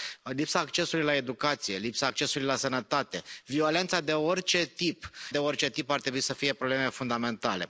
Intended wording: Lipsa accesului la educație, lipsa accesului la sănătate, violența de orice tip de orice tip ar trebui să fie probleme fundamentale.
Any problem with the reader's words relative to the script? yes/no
no